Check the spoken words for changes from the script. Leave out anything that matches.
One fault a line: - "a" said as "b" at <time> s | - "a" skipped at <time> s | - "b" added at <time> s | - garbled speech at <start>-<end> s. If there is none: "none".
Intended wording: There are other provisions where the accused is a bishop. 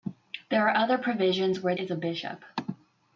- "the accused" skipped at 1.8 s